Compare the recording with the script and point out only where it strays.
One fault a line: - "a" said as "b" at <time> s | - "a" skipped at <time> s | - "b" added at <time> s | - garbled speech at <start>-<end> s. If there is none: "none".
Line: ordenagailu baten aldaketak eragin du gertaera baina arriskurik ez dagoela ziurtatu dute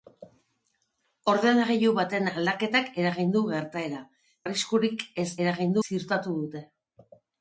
- "baina" skipped at 4.0 s
- "dagoela" said as "eragin" at 5.4 s